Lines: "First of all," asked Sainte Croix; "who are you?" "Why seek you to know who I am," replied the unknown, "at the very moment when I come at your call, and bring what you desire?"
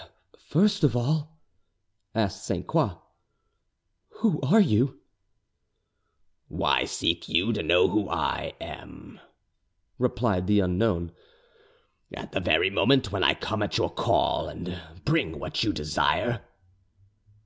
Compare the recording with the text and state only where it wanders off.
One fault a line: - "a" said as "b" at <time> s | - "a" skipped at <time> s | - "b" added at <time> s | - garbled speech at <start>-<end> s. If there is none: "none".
none